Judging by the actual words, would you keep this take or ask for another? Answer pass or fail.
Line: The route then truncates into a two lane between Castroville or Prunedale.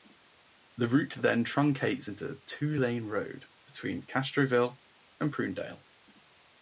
fail